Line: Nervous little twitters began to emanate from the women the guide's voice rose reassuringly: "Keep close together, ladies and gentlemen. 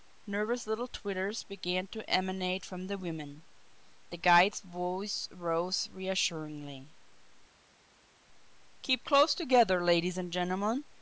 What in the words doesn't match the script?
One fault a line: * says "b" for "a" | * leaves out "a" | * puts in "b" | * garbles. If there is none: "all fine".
all fine